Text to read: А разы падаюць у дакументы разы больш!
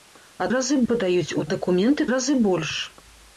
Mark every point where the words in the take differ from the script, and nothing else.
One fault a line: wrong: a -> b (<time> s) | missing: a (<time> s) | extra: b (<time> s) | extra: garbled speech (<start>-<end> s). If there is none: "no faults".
no faults